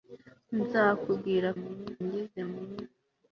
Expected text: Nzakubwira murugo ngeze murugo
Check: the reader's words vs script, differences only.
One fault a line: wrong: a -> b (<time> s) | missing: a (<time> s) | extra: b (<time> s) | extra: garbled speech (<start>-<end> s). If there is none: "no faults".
no faults